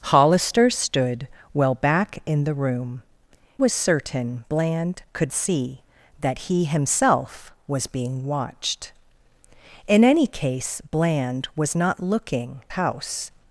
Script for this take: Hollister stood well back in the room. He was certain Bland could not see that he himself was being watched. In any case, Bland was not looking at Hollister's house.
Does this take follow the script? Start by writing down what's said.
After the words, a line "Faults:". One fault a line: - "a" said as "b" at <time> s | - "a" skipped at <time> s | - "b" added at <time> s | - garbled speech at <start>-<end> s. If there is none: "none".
Hollister stood well back in the room. Was certain Bland could see that he himself was being watched. In any case, Bland was not looking house.
Faults:
- "He" skipped at 3.0 s
- "not" skipped at 5.3 s
- "at Hollister's" skipped at 12.6 s